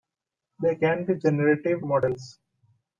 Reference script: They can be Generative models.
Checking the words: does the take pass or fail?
pass